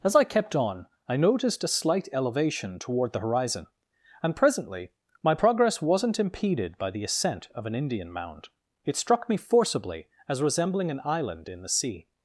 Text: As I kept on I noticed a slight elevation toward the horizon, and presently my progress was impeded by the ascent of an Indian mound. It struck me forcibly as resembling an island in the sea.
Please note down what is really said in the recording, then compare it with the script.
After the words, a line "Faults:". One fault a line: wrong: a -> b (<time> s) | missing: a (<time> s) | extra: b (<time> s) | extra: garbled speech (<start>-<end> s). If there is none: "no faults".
As I kept on I noticed a slight elevation toward the horizon, and presently my progress wasn't impeded by the ascent of an Indian mound. It struck me forcibly as resembling an island in the sea.
Faults:
wrong: was -> wasn't (5.8 s)